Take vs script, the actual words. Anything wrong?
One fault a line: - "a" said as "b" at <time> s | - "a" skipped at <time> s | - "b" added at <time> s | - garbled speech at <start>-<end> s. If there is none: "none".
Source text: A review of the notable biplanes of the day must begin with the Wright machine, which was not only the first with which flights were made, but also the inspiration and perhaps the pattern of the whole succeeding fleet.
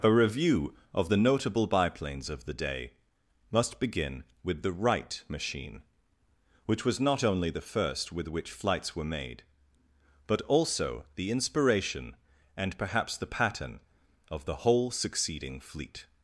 none